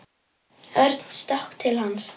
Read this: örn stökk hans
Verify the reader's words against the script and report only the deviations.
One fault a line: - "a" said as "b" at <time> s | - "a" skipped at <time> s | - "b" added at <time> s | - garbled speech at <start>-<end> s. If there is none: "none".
- "til" added at 1.6 s